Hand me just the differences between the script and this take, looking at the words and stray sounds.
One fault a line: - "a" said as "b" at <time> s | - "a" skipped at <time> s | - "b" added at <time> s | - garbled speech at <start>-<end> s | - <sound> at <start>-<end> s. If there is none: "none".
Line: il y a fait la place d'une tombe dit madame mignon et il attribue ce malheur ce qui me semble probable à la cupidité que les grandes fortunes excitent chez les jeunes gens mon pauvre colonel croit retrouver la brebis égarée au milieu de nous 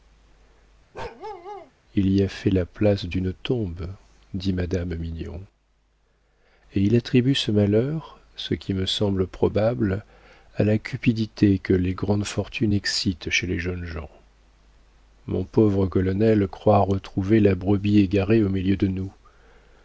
- bark at 0.9-1.7 s